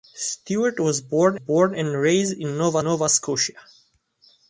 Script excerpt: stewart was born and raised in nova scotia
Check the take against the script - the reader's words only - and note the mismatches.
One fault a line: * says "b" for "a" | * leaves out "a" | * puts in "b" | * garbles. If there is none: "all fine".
* puts in "born"
* puts in "nova"